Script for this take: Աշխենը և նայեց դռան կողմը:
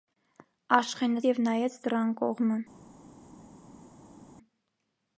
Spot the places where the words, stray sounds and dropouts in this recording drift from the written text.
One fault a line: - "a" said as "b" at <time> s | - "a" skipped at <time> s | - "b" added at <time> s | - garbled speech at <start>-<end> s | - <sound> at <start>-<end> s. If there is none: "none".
none